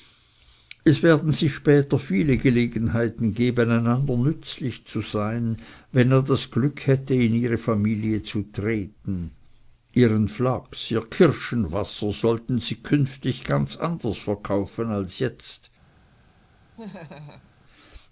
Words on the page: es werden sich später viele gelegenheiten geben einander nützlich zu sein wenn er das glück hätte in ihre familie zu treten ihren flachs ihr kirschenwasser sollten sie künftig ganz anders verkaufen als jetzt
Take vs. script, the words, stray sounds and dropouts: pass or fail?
fail